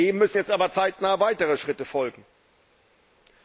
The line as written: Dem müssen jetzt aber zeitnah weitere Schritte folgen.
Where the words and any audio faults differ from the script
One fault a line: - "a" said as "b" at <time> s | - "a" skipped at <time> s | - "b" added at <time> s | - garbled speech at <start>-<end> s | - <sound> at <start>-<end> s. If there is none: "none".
none